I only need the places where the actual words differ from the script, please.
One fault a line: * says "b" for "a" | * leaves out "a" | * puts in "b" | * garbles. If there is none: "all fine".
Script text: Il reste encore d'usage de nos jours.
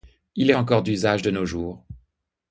* leaves out "reste"